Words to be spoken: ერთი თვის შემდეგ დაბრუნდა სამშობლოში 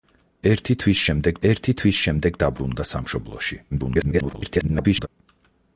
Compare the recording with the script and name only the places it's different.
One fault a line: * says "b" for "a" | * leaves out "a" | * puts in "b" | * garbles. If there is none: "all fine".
* puts in "ერთი თვის შემდეგ"
* garbles